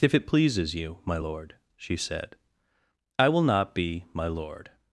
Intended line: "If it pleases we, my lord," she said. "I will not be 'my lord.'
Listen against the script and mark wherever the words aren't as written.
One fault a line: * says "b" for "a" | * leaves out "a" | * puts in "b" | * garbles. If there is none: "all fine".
* says "you" for "we"